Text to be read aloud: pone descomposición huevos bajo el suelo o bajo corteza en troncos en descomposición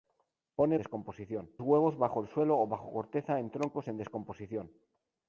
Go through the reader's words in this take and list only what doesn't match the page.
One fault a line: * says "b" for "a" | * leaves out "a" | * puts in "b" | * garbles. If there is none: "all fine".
all fine